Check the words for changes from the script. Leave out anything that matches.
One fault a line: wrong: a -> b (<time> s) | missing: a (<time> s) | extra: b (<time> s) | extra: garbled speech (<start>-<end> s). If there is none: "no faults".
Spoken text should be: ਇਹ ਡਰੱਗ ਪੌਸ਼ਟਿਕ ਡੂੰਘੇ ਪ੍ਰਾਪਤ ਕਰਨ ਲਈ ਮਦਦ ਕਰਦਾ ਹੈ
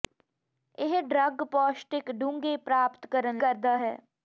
missing: ਲਈ ਮਦਦ (3.4 s)